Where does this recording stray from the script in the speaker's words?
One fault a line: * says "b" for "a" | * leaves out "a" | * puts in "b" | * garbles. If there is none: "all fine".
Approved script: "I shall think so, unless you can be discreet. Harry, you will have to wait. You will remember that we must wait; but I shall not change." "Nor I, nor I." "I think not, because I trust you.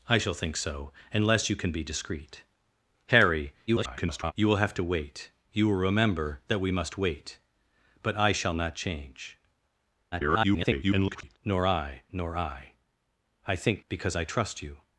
* garbles
* garbles
* leaves out "not"